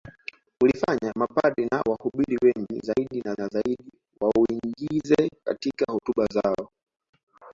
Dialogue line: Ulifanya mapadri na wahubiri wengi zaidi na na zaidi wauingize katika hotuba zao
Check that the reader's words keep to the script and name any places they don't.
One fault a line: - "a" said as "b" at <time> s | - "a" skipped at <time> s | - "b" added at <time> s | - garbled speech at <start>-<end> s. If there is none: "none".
none